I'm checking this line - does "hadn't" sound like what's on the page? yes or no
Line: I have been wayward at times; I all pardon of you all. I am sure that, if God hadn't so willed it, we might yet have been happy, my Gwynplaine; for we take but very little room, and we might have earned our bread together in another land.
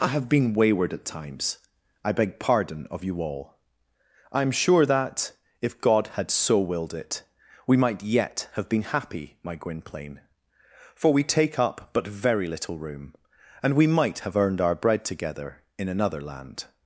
no